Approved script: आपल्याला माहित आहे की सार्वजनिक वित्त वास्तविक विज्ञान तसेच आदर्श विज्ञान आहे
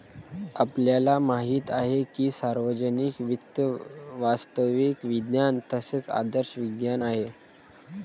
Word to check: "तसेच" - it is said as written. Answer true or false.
true